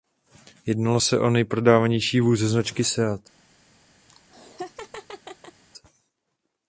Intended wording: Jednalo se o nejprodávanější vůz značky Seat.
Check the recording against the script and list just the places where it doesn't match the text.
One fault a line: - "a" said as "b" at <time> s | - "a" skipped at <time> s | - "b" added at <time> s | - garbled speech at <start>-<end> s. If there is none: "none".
none